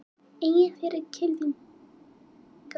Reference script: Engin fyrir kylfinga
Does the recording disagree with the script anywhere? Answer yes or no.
no